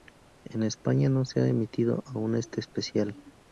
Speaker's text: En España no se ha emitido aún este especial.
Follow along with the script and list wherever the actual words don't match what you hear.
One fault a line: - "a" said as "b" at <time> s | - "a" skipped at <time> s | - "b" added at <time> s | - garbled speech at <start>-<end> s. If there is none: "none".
none